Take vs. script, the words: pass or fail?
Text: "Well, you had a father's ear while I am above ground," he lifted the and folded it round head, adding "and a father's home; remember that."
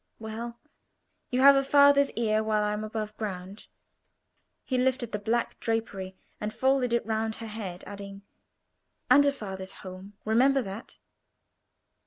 fail